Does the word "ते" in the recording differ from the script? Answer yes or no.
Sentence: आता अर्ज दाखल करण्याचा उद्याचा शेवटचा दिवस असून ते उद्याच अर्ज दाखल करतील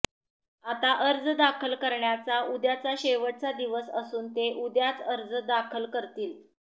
no